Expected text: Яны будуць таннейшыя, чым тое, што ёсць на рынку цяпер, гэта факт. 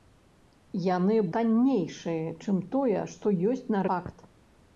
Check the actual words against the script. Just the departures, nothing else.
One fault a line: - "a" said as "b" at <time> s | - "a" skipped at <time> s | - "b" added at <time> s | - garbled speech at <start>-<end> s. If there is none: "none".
- "будуць" skipped at 1.2 s
- "рынку цяпер гэта" skipped at 3.9 s